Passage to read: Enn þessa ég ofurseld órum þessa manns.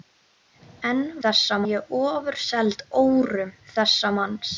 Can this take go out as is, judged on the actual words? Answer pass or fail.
pass